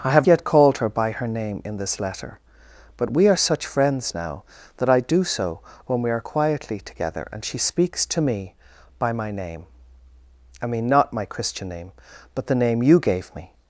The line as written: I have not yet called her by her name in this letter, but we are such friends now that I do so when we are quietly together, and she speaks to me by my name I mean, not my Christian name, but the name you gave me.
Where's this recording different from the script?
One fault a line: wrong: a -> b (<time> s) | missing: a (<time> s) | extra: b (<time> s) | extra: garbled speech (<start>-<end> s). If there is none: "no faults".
missing: not (0.3 s)